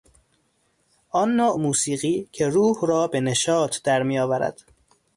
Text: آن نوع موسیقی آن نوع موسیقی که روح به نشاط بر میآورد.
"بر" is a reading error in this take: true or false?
true